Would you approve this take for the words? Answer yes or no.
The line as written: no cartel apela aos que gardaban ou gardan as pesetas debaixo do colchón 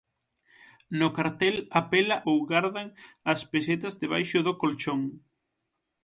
no